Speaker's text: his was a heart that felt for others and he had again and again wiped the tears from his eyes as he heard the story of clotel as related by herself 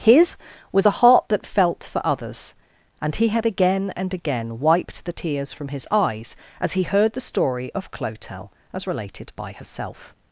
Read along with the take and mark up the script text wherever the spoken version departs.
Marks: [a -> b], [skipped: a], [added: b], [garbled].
his was a heart that felt for others and he had again and again wiped the tears from his eyes as he heard the story of clotel as related by herself